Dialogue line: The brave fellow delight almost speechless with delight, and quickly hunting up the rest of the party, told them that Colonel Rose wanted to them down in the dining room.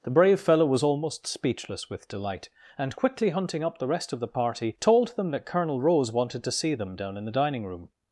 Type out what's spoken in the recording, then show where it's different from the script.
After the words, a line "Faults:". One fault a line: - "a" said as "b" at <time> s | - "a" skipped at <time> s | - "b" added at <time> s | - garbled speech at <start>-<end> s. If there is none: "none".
The brave fellow was almost speechless with delight, and quickly hunting up the rest of the party, told them that Colonel Rose wanted to see them down in the dining room.
Faults:
- "delight" said as "was" at 0.7 s
- "see" added at 6.5 s